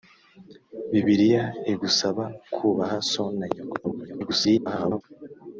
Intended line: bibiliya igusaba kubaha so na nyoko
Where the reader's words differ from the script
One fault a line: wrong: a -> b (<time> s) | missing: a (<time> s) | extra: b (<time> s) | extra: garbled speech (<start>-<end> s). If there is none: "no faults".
extra: garbled speech (3.8-5.0 s)